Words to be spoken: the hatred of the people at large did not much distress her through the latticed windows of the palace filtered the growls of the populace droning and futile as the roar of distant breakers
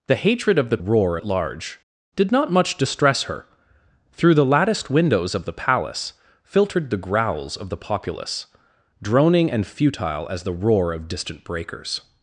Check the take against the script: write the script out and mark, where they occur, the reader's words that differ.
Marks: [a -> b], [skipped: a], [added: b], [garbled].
the hatred of the [people -> roar] at large did not much distress her through the latticed windows of the palace filtered the growls of the populace droning and futile as the roar of distant breakers